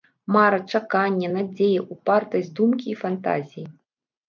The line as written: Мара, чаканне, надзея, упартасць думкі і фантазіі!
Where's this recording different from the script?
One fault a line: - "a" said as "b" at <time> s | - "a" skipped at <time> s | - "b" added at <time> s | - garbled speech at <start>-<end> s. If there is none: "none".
none